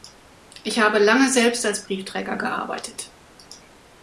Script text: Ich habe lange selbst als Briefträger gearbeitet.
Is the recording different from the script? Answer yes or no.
no